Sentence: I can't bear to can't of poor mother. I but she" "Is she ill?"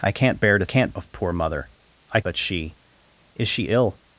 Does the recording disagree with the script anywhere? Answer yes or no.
no